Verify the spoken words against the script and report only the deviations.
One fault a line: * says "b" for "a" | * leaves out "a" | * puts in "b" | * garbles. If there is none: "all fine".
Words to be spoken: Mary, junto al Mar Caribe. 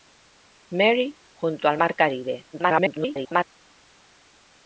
* garbles